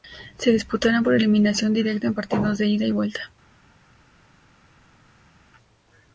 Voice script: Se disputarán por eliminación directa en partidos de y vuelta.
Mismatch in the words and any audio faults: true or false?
true